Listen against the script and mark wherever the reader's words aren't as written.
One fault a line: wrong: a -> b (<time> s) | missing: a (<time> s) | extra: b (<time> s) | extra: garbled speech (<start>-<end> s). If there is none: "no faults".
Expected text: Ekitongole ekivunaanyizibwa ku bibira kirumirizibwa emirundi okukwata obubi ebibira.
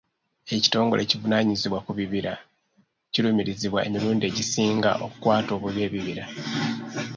extra: egisinga (4.3 s)